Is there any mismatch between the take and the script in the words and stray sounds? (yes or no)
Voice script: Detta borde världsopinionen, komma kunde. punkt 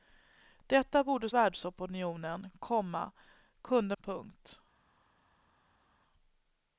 no